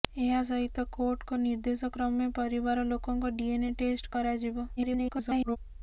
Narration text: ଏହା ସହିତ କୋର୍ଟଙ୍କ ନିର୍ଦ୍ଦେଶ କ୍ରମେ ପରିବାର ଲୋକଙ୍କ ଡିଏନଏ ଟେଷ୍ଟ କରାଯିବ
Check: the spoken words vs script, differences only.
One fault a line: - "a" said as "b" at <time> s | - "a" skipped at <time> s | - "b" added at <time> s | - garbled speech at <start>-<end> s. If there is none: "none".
- garbled speech at 4.8-5.6 s